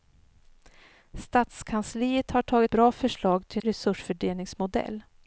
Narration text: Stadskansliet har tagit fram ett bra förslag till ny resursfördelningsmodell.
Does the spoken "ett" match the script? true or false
false